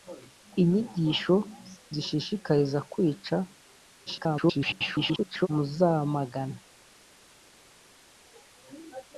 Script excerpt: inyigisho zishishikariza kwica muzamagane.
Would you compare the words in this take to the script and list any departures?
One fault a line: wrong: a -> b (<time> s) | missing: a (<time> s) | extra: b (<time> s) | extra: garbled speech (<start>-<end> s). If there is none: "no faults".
extra: garbled speech (4.1-5.5 s)